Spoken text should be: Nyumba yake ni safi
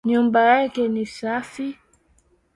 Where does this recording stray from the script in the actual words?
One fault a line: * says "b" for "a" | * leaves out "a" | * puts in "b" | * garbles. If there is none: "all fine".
all fine